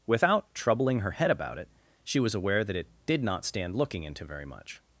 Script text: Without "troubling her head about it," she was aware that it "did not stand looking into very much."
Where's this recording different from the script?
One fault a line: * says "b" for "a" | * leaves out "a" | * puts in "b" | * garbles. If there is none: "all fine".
all fine